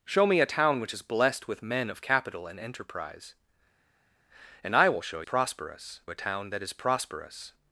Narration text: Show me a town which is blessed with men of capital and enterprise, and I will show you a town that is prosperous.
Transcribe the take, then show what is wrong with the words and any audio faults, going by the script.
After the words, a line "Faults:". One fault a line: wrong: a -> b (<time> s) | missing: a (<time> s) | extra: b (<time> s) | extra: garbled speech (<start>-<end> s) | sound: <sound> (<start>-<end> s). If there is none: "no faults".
Show me a town which is blessed with men of capital and enterprise, and I will show prosperous a town that is prosperous.
Faults:
wrong: you -> prosperous (5.2 s)